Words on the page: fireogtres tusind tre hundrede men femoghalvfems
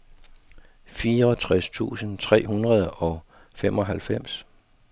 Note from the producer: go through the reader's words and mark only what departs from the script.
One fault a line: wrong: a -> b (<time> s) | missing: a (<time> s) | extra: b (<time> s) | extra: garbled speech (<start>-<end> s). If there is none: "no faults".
wrong: men -> og (2.9 s)